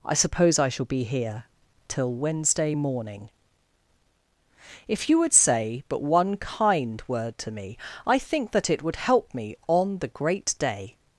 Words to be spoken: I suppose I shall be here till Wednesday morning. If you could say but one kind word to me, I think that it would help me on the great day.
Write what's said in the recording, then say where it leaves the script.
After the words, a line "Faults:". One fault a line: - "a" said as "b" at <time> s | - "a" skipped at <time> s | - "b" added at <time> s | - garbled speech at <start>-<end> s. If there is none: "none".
I suppose I shall be here till Wednesday morning. If you would say but one kind word to me, I think that it would help me on the great day.
Faults:
- "could" said as "would" at 5.2 s